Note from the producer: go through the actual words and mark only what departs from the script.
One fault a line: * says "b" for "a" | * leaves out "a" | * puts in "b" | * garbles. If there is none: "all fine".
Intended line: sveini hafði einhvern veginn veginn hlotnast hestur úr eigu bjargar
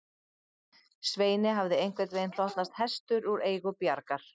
* leaves out "veginn"